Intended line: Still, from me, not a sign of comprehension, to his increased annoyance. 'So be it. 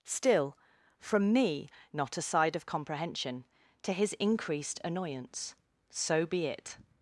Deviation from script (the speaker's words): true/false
true